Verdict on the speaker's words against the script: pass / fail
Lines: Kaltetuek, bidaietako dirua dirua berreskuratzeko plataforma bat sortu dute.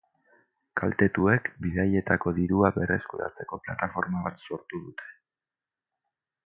fail